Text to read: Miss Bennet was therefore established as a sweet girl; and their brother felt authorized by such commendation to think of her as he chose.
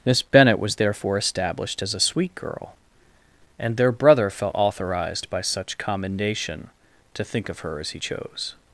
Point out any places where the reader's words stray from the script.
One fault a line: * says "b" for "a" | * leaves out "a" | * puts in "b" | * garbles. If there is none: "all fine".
all fine